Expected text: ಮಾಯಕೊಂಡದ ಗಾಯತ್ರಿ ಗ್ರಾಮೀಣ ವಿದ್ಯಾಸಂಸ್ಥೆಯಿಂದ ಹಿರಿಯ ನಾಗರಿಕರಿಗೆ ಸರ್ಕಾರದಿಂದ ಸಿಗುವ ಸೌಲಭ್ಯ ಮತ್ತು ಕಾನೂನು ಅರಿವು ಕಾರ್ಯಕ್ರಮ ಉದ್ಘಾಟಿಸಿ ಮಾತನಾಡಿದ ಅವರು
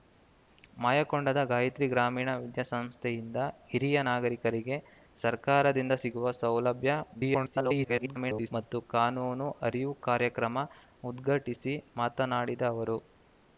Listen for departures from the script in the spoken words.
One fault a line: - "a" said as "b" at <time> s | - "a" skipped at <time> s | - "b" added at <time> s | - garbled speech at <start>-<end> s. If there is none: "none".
- garbled speech at 7.1-8.5 s